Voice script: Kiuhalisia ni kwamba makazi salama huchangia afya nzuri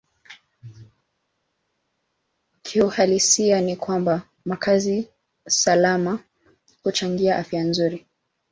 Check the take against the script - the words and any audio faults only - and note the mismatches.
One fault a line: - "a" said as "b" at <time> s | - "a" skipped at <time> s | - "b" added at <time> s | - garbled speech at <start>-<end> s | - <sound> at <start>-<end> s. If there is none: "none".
none